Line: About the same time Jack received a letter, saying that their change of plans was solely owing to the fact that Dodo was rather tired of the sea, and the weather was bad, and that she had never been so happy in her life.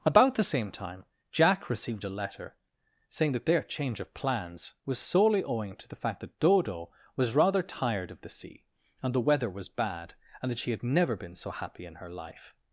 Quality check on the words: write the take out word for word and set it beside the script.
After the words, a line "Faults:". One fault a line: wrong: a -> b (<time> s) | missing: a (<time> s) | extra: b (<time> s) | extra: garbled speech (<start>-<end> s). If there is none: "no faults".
About the same time Jack received a letter, saying that their change of plans was solely owing to the fact that Dodo was rather tired of the sea, and the weather was bad, and that she had never been so happy in her life.
Faults:
no faults